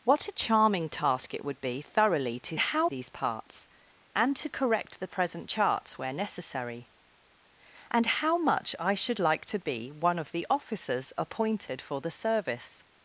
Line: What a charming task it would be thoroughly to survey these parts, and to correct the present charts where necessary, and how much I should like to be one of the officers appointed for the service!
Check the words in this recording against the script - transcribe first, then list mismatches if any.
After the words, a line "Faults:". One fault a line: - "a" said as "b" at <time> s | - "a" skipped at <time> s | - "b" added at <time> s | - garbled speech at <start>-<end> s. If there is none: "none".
What a charming task it would be thoroughly to how these parts, and to correct the present charts where necessary, and how much I should like to be one of the officers appointed for the service!
Faults:
- "survey" said as "how" at 2.6 s